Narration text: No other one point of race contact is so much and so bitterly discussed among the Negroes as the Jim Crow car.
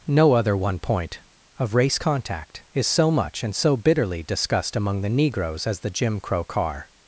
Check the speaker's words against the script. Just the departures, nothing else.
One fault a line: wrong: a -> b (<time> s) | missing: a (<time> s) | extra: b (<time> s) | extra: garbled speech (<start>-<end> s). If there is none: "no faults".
no faults